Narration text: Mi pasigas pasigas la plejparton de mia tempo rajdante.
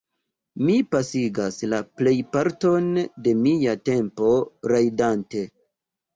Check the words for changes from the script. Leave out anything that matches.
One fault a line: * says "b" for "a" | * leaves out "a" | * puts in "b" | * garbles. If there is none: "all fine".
* leaves out "pasigas"